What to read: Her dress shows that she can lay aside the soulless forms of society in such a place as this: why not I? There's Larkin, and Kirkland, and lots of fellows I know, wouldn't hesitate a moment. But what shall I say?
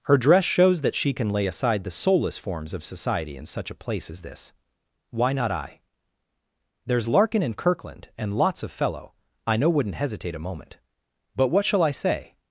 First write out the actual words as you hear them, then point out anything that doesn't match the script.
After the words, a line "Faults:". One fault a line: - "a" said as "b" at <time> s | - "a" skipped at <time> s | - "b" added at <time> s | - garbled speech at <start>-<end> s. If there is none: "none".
Her dress shows that she can lay aside the soulless forms of society in such a place as this: why not I? There's Larkin, and Kirkland, and lots of fellow I know, wouldn't hesitate a moment. But what shall I say?
Faults:
- "fellows" said as "fellow" at 8.7 s